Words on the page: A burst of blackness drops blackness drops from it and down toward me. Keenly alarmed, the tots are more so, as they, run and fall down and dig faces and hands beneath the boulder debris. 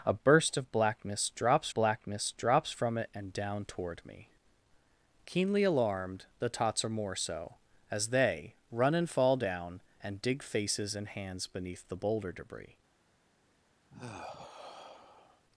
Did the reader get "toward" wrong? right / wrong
right